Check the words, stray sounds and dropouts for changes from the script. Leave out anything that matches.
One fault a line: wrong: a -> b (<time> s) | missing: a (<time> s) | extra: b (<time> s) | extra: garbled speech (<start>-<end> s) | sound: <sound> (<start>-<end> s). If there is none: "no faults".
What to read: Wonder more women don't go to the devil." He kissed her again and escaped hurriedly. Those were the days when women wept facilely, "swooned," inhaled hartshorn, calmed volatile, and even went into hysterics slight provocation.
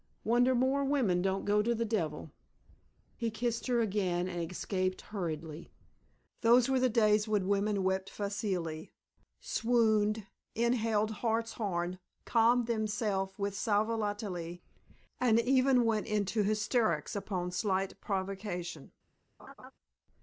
extra: themselves with sal (12.7 s)
extra: upon (17.1 s)
sound: laugh (19.4-19.7 s)